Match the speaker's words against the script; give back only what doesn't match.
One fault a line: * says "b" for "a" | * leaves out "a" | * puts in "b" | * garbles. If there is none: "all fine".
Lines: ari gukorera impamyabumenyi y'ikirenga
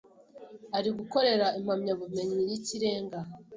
all fine